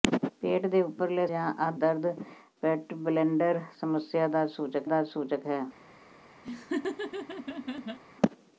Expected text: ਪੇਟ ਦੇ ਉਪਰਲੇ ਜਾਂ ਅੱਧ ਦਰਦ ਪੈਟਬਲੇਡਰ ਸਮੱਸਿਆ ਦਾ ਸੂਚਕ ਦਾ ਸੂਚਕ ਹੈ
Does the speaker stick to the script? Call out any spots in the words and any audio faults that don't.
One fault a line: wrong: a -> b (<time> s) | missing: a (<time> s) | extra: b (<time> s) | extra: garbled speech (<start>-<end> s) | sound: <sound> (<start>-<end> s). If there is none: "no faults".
sound: laugh (6.4-8.0 s)